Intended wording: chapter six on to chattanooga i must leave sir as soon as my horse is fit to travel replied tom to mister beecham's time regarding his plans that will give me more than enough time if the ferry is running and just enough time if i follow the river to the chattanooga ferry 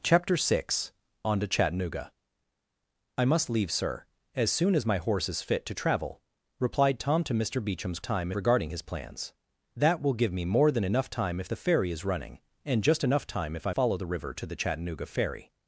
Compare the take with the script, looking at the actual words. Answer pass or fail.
pass